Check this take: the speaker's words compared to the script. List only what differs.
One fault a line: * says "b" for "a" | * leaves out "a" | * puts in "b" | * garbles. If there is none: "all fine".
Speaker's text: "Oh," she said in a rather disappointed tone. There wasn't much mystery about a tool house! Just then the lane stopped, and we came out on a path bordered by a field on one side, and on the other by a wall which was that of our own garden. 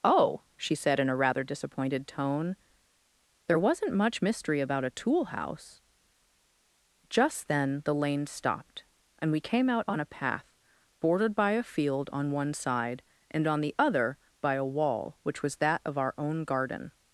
all fine